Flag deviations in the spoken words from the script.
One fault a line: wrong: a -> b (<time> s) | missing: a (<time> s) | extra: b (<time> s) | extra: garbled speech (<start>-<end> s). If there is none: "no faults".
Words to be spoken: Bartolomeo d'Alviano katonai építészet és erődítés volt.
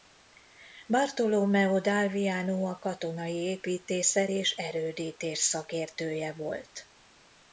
extra: a (2.7 s)
extra: szakértője (5.4 s)